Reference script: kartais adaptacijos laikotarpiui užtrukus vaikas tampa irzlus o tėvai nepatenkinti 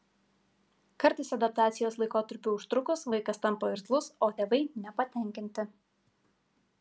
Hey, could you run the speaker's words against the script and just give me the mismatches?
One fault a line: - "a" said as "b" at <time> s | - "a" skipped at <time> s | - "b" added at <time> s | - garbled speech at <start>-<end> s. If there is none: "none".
none